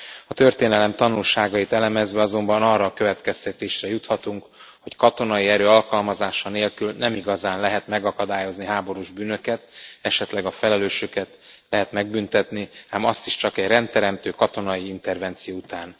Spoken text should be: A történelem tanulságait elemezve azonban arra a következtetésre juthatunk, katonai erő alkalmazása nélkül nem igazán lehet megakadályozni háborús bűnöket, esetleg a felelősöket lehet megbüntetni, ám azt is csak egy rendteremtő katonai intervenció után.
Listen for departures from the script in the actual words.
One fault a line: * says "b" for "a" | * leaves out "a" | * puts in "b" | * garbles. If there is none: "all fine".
* puts in "hogy"